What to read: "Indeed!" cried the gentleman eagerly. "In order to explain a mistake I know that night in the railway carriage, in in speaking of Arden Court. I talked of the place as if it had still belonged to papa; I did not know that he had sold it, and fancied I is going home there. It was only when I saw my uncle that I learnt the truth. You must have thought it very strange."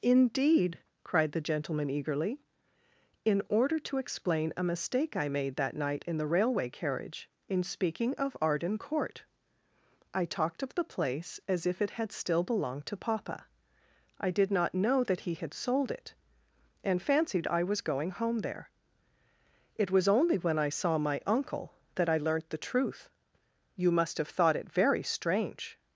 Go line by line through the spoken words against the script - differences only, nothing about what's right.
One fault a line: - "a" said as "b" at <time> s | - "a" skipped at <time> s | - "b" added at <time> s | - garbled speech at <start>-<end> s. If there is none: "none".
- "know" said as "made" at 5.3 s
- "in" skipped at 7.6 s
- "is" said as "was" at 17.6 s